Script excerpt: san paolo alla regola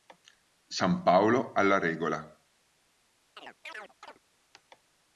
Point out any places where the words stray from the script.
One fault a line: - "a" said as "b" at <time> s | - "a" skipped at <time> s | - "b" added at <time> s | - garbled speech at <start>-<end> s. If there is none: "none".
none